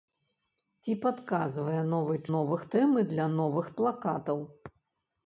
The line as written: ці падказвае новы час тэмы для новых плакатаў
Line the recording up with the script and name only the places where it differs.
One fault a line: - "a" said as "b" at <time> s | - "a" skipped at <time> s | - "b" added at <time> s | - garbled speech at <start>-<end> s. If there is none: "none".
- "час" said as "новых" at 2.3 s